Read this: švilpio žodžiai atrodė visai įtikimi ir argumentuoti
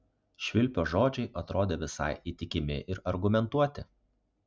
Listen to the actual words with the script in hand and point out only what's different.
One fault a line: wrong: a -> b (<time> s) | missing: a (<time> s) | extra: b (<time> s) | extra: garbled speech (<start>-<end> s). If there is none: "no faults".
no faults